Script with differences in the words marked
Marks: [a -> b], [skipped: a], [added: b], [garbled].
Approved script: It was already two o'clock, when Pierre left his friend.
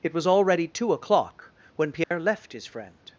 It was already two o'clock, when Pierre left his friend.